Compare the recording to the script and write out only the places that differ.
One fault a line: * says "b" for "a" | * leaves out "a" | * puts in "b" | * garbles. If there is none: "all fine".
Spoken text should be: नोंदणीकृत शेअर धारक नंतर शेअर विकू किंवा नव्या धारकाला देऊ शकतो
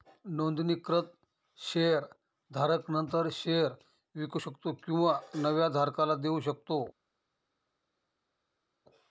* puts in "शकतो"